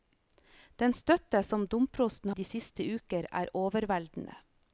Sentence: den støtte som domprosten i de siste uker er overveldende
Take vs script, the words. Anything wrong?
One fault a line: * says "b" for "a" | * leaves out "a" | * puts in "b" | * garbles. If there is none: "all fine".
all fine